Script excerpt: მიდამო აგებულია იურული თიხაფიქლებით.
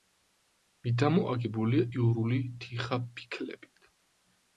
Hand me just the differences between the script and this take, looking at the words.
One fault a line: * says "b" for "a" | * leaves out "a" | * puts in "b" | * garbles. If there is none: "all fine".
all fine